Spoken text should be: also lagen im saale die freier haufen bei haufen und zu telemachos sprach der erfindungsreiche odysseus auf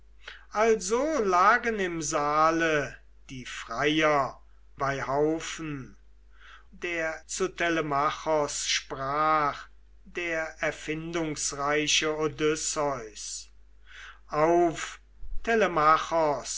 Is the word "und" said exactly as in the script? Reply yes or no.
no